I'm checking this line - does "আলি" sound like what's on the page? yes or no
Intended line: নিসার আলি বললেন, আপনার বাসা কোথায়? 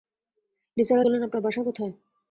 no